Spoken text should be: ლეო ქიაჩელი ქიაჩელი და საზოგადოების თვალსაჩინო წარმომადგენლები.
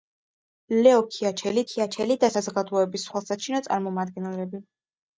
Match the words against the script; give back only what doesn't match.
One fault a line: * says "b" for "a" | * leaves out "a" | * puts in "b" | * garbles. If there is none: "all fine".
all fine